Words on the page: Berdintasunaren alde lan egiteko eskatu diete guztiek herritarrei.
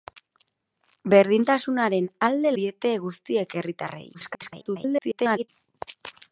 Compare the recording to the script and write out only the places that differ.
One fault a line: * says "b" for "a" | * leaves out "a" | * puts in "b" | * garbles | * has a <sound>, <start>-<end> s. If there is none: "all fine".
* leaves out "lan egiteko eskatu"
* garbles